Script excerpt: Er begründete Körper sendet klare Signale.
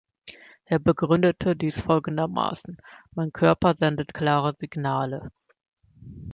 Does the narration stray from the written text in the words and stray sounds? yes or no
yes